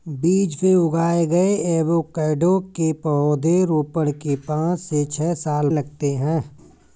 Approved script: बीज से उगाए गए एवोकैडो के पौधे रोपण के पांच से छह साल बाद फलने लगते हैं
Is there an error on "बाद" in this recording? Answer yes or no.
yes